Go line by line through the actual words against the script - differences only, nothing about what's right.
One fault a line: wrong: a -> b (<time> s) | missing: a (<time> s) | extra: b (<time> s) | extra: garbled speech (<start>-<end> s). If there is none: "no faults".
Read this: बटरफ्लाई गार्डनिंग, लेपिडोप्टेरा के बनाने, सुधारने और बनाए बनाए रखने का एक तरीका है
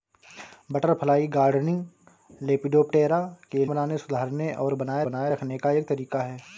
no faults